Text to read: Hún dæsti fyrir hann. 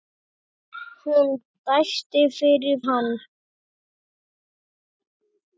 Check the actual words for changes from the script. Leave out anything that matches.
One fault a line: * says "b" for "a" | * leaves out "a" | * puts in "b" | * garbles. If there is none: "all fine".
all fine